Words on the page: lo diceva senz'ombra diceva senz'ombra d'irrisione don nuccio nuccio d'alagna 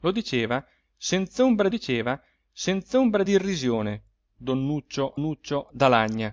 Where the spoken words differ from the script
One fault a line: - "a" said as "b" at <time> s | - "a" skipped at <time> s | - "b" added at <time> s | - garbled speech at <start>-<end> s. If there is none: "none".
none